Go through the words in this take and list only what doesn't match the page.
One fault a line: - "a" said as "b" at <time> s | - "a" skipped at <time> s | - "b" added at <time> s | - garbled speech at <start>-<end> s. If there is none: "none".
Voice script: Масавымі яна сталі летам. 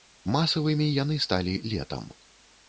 - "яна" said as "яны" at 1.0 s